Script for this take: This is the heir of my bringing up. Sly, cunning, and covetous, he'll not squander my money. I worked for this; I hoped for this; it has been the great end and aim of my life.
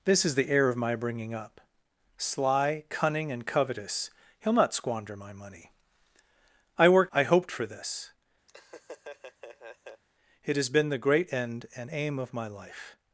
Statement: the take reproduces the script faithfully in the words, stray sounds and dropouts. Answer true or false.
false